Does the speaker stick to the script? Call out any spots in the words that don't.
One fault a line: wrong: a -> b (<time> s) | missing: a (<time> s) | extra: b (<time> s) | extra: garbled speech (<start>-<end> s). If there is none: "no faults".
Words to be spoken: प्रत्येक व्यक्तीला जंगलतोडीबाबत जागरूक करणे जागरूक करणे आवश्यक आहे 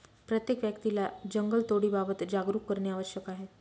missing: जागरूक करणे (2.9 s)